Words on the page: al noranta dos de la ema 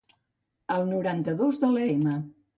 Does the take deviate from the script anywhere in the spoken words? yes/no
no